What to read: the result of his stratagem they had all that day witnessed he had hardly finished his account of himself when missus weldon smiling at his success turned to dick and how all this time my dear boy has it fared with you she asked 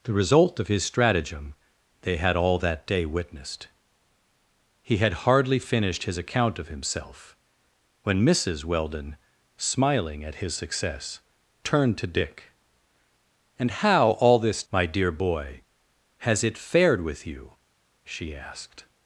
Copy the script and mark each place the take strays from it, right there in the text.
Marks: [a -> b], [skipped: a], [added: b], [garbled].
the result of his stratagem they had all that day witnessed he had hardly finished his account of himself when missus weldon smiling at his success turned to dick and how all this [skipped: time] my dear boy has it fared with you she asked